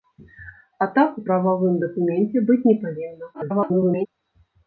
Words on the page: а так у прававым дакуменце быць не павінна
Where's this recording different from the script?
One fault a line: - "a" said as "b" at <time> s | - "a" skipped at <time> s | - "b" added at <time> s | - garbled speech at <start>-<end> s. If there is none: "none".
- garbled speech at 3.3-4.1 s